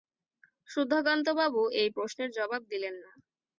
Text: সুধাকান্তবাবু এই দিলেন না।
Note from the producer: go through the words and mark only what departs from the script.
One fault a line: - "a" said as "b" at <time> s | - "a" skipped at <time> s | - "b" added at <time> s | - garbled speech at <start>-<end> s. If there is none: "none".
- "প্রশ্নের জবাব" added at 1.9 s